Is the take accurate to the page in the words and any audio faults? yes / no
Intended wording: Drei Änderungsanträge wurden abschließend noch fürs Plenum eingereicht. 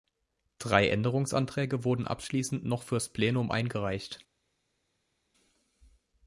yes